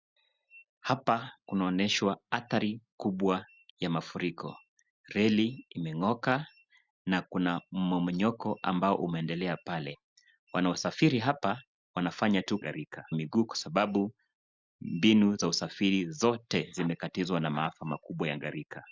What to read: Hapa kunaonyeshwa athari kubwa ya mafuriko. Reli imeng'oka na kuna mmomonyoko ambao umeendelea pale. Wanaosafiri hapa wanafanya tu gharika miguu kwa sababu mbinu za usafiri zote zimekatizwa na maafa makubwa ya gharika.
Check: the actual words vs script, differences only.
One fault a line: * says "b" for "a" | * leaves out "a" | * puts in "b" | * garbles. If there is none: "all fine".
all fine